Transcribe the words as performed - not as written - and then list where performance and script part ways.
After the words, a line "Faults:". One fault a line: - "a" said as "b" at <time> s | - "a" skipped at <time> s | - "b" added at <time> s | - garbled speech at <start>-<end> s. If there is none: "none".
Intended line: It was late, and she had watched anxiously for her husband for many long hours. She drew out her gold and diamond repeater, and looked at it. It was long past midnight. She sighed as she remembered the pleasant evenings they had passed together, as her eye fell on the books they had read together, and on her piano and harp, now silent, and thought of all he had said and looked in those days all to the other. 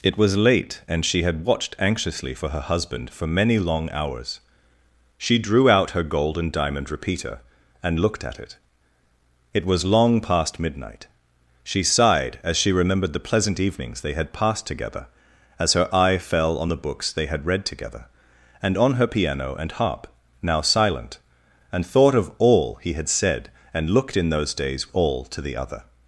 It was late, and she had watched anxiously for her husband for many long hours. She drew out her gold and diamond repeater, and looked at it. It was long past midnight. She sighed as she remembered the pleasant evenings they had passed together, as her eye fell on the books they had read together, and on her piano and harp, now silent, and thought of all he had said and looked in those days all to the other.
Faults:
none